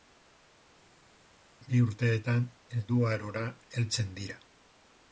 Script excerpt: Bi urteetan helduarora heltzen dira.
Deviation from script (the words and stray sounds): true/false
false